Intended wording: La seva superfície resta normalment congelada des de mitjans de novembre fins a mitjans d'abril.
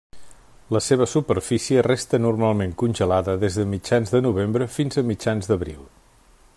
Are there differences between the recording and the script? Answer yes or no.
no